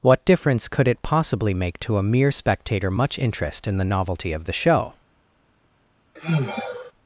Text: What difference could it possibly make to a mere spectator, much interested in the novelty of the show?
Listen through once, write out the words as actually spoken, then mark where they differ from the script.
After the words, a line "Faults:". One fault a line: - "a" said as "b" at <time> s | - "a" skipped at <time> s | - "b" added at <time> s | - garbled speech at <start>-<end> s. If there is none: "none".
What difference could it possibly make to a mere spectator, much interest in the novelty of the show?
Faults:
- "interested" said as "interest" at 3.2 s